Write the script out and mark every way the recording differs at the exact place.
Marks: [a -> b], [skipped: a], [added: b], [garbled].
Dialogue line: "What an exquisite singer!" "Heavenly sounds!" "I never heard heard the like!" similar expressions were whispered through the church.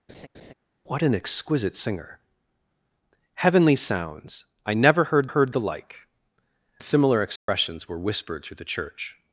"What an exquisite singer!" "Heavenly sounds!" "I never heard heard the like!" similar expressions were whispered through the church.